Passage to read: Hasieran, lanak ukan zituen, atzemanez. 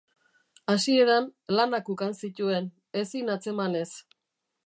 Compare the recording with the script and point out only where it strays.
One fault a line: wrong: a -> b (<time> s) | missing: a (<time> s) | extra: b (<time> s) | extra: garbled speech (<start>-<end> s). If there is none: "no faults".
extra: ezin (3.0 s)